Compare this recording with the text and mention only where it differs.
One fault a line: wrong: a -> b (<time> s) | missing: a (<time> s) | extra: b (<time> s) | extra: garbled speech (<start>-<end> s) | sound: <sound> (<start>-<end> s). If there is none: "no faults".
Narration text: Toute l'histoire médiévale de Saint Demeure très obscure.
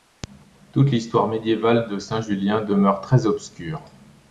extra: Julien (2.2 s)